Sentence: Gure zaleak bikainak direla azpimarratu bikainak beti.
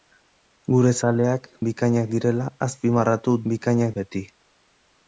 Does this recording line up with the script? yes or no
yes